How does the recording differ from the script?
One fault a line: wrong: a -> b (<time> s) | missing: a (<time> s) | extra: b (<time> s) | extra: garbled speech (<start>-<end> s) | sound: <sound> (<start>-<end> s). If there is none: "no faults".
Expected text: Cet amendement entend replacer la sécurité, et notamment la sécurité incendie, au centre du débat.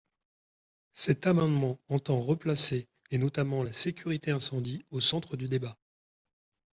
missing: la sécurité (2.9 s)